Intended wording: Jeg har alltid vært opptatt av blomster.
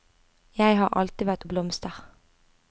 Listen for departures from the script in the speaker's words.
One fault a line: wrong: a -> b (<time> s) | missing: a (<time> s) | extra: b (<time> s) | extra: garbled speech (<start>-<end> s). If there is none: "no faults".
missing: opptatt (1.4 s)